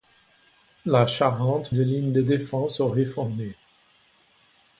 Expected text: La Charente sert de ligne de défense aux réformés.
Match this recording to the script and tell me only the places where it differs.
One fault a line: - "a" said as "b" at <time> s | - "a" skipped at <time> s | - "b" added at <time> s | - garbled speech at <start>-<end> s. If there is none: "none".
- "sert" skipped at 1.7 s